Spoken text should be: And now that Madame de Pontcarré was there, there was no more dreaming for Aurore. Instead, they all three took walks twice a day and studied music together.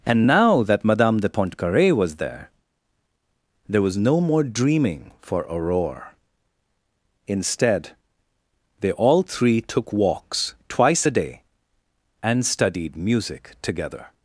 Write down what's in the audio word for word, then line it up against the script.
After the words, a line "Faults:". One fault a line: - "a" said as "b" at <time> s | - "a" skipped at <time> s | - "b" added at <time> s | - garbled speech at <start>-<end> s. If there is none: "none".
And now that Madame de Pontcarré was there, there was no more dreaming for Aurore. Instead, they all three took walks twice a day and studied music together.
Faults:
none